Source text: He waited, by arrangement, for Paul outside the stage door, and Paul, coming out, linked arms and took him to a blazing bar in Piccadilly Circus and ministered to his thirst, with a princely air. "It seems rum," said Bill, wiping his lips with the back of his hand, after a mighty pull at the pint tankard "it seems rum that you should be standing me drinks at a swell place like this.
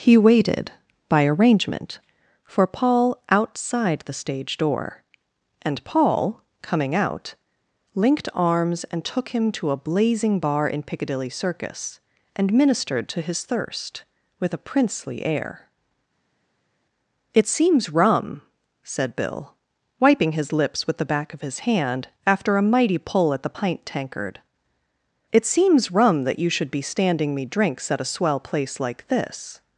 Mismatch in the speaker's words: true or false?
false